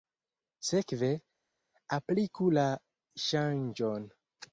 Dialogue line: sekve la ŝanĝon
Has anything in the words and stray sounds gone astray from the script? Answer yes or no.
yes